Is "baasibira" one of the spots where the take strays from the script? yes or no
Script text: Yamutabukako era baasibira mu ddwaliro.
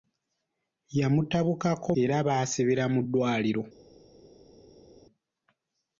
no